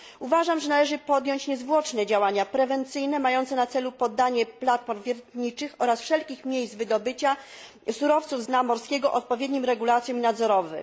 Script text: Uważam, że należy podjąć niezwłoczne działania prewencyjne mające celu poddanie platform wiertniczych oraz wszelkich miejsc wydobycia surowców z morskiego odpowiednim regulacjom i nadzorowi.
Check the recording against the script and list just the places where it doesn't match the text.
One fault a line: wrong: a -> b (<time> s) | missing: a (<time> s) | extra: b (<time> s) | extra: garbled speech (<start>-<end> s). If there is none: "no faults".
extra: na (3.5 s)
extra: dna (8.4 s)